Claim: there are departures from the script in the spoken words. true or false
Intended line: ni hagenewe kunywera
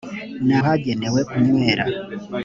false